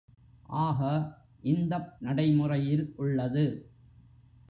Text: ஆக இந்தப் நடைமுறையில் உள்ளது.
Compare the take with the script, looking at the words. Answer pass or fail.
pass